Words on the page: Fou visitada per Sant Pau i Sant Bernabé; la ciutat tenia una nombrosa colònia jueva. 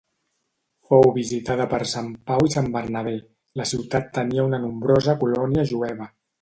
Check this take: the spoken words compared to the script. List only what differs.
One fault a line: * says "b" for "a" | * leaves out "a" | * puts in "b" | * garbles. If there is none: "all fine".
all fine